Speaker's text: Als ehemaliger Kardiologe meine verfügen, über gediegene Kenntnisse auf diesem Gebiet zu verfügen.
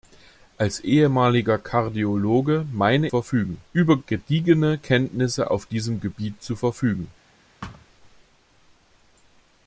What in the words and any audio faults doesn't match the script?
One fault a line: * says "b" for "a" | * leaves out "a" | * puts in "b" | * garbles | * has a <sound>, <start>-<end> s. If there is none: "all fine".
* has a thud, 7.6-7.9 s